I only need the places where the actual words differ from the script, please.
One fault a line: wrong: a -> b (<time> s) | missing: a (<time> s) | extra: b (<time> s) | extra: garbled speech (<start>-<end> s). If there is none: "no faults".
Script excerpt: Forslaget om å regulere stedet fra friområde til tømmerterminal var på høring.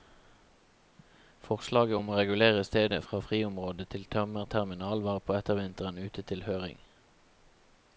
extra: ettervinteren ute til (5.4 s)